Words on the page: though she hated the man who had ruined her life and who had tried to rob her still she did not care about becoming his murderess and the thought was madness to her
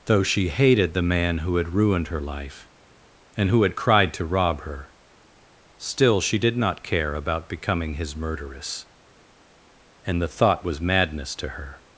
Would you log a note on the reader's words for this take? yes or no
yes